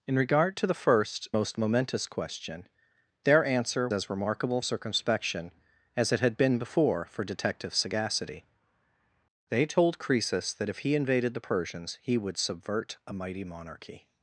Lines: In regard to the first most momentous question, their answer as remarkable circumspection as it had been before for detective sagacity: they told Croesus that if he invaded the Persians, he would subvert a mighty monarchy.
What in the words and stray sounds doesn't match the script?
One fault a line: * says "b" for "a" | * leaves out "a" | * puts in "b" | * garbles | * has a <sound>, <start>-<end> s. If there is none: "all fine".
all fine